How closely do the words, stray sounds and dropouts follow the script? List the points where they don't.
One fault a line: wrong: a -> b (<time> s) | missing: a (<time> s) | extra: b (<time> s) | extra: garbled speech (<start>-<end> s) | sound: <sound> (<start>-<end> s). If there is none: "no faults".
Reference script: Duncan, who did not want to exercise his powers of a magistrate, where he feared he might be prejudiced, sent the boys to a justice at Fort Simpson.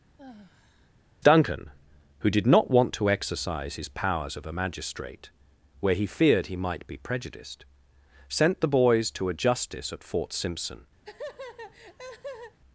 sound: sigh (0.2-0.9 s)
sound: laugh (11.0-12.6 s)